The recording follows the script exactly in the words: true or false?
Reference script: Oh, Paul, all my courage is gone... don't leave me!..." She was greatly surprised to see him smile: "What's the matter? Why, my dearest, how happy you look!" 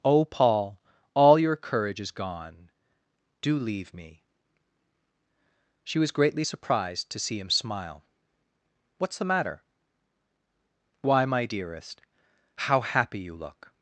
false